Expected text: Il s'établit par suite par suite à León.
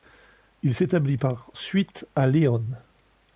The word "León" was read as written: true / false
true